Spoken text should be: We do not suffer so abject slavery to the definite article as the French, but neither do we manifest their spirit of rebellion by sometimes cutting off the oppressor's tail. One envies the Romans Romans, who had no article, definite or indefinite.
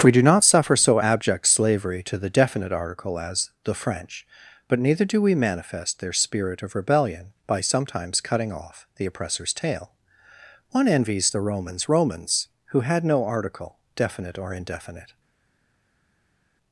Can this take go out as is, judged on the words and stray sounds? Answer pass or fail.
pass